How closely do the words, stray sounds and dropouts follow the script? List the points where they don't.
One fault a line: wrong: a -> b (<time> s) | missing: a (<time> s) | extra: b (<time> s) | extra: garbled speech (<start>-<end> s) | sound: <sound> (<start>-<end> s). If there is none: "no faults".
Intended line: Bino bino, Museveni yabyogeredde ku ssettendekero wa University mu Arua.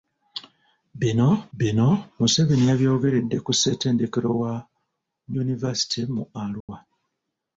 sound: dropout (6.6-6.7 s)